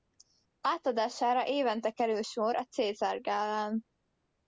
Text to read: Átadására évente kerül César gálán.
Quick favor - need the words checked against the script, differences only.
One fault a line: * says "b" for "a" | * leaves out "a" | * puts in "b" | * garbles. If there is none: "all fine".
* puts in "sor a"